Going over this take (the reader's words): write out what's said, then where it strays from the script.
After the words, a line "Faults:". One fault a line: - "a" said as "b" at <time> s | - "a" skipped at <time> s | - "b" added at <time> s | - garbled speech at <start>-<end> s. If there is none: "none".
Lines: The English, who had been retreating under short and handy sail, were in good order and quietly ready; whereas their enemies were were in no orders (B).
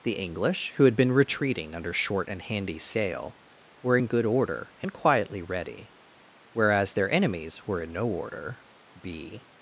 The English, who had been retreating under short and handy sail, were in good order and quietly ready; whereas their enemies were in no order (B).
Faults:
- "were" skipped at 7.8 s
- "orders" said as "order" at 8.1 s